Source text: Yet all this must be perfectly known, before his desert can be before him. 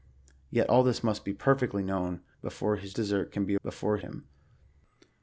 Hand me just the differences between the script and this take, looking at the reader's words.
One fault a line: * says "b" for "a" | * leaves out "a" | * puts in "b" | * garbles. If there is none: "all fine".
all fine